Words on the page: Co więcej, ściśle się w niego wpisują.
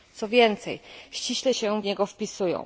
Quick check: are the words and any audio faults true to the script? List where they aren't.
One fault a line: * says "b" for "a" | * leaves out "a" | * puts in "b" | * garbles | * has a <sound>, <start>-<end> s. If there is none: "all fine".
all fine